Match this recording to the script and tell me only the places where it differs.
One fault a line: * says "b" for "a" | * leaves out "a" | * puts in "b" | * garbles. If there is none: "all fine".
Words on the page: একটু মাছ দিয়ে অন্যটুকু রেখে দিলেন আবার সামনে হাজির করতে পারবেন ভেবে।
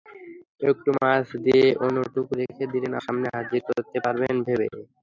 * leaves out "আবার"